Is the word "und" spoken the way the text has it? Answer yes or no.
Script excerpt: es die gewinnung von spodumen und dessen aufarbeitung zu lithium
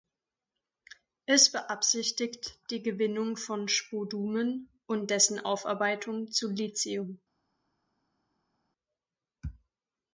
yes